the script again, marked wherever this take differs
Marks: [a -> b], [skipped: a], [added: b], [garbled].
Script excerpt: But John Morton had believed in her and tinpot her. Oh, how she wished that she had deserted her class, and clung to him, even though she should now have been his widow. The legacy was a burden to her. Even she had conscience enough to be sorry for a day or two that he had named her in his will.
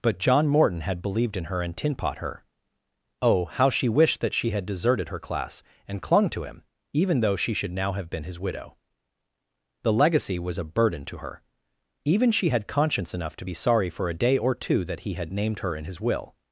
But John Morton had believed in her and tinpot her. Oh, how she wished that she had deserted her class, and clung to him, even though she should now have been his widow. The legacy was a burden to her. Even she had conscience enough to be sorry for a day or two that he had named her in his will.